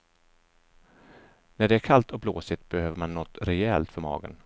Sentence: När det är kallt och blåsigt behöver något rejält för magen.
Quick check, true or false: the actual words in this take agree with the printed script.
false